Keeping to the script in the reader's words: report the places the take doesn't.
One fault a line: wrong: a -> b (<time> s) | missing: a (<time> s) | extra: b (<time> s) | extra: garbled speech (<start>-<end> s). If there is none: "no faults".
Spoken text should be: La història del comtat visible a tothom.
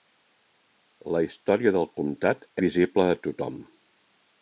no faults